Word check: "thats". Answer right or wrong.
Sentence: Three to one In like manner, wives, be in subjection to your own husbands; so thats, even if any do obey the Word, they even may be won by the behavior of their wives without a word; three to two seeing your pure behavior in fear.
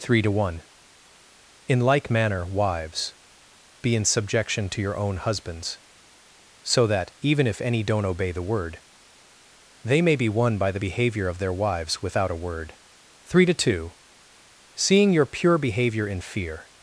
wrong